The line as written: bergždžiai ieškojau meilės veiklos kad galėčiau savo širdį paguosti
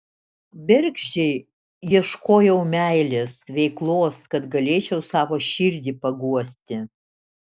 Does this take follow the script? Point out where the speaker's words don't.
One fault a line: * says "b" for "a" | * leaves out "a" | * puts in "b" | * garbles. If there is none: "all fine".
all fine